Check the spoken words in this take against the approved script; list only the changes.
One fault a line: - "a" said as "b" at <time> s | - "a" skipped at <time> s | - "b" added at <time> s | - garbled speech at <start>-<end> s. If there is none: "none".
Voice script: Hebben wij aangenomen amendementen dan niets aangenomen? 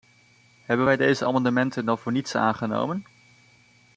- "aangenomen" said as "deze" at 1.0 s
- "voor" added at 2.0 s